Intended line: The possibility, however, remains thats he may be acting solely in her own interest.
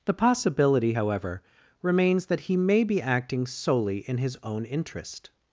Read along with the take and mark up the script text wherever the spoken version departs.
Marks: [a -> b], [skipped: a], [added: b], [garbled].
The possibility, however, remains [thats -> that] he may be acting solely in [her -> his] own interest.